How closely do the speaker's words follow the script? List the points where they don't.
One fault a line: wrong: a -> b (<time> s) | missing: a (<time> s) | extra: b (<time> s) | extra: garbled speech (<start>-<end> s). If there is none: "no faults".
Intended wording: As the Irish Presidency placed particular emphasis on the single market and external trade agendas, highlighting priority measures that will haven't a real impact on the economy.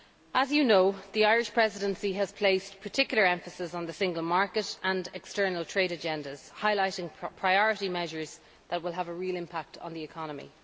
extra: you know (0.5 s)
extra: has (2.1 s)
wrong: haven't -> have (8.9 s)